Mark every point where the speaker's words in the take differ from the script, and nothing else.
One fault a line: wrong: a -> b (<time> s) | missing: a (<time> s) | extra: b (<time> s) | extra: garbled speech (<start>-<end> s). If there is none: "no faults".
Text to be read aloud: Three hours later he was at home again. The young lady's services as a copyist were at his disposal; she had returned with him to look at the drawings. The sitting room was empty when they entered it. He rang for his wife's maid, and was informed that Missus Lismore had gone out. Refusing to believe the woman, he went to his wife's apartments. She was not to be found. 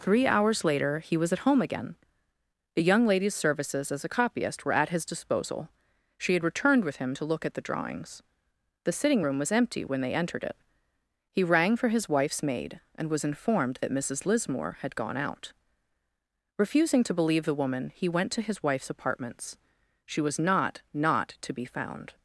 extra: not (20.9 s)